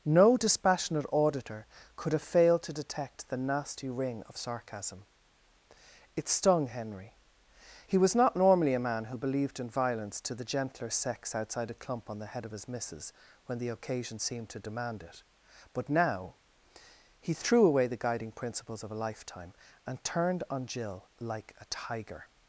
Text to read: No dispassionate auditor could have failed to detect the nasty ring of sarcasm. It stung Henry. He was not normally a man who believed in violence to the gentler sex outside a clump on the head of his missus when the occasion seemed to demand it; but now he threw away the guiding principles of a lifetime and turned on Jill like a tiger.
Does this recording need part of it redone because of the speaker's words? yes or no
no